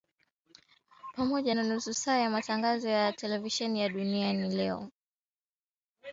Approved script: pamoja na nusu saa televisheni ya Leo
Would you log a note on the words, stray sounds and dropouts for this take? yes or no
yes